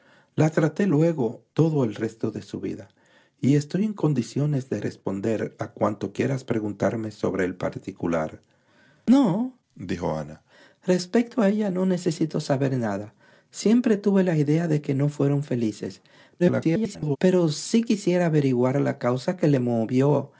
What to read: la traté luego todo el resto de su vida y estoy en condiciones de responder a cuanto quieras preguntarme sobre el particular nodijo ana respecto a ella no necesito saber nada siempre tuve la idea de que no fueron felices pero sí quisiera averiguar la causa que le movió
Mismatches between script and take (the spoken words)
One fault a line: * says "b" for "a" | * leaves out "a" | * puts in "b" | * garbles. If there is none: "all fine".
* garbles